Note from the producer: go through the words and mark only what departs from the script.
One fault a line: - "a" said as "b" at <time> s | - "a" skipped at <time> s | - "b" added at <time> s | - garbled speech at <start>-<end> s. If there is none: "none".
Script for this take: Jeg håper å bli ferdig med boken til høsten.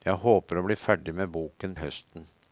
- "til" skipped at 1.7 s